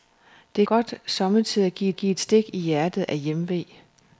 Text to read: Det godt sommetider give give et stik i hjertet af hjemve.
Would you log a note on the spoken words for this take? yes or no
no